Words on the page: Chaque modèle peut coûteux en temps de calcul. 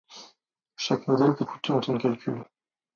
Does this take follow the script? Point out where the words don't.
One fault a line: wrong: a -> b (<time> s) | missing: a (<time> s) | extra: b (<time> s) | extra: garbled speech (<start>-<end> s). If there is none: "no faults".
no faults